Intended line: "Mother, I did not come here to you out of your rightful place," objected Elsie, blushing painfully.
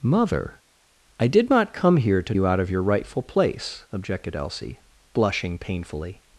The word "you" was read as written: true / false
true